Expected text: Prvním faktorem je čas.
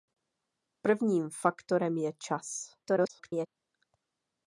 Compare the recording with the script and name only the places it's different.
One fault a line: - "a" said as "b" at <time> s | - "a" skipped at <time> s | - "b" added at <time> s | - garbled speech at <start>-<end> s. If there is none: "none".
- garbled speech at 2.8-3.5 s